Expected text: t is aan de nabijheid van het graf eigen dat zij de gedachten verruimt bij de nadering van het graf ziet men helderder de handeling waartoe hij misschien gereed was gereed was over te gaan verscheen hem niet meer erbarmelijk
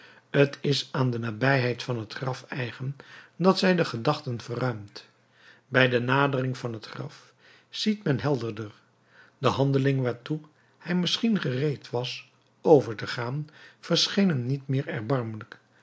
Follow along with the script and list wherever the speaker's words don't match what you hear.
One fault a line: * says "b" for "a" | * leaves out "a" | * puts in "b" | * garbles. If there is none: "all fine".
* leaves out "gereed was"